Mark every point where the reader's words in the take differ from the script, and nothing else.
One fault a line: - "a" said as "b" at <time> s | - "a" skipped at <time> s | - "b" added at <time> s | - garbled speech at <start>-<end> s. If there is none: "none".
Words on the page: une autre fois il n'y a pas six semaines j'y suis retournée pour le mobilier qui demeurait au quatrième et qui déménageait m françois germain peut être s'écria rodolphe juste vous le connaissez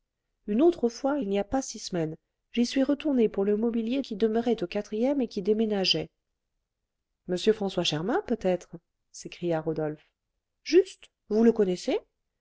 none